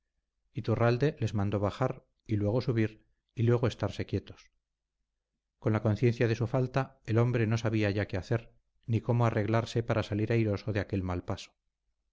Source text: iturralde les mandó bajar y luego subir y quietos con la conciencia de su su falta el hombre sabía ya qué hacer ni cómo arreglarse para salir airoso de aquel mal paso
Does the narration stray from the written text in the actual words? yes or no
yes